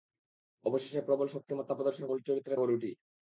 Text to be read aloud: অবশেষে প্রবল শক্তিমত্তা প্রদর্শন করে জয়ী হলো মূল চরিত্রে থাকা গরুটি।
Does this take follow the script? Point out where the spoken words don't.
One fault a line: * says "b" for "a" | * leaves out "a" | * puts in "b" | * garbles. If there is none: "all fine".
* leaves out "করে জয়ী হলো"
* leaves out "থাকা"